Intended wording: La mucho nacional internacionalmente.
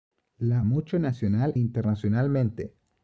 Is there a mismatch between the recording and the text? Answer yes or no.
no